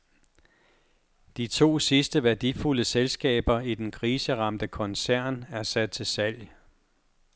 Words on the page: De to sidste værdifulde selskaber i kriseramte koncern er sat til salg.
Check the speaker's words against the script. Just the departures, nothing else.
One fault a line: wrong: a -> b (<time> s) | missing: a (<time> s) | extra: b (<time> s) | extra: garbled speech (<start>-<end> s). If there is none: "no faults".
extra: den (3.7 s)